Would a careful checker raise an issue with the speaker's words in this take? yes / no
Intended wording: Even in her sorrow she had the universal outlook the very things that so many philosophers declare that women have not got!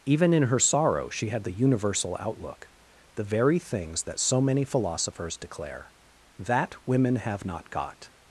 no